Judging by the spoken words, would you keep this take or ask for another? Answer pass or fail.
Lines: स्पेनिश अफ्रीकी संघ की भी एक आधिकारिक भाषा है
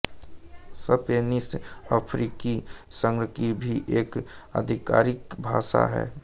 pass